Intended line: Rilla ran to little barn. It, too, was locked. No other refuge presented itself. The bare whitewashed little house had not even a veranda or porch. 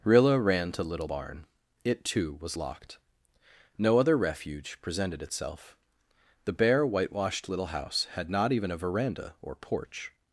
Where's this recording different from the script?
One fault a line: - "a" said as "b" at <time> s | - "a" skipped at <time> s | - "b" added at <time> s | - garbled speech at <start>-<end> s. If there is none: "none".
none